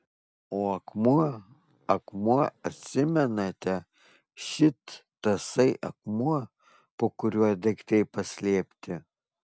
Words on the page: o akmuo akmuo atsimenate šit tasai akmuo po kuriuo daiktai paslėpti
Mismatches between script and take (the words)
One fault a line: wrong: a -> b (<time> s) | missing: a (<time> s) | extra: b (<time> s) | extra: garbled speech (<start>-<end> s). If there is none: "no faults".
no faults